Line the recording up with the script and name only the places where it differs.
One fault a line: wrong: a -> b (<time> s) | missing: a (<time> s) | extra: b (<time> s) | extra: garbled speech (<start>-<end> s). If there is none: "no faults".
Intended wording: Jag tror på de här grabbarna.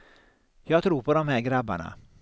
no faults